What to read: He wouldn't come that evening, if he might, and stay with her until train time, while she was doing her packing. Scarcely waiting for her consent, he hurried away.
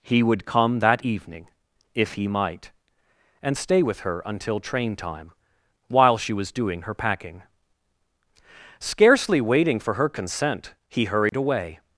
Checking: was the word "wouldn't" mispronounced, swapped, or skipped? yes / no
yes